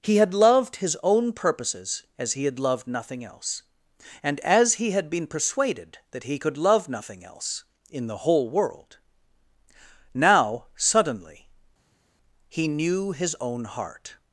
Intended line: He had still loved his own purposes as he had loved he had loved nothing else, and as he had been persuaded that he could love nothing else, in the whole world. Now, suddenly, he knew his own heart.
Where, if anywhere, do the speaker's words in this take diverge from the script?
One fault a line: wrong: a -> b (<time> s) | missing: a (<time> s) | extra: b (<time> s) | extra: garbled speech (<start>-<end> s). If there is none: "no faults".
missing: still (0.3 s)
missing: he had loved (2.9 s)